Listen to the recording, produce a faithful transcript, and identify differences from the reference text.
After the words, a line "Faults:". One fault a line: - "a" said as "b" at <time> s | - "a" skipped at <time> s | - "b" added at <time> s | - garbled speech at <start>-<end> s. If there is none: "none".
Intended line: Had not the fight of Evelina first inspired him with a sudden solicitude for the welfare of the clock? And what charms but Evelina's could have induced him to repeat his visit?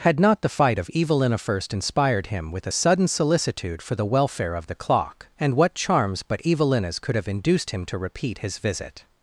Had not the fight of Evelina first inspired him with a sudden solicitude for the welfare of the clock? And what charms but Evelina's could have induced him to repeat his visit?
Faults:
none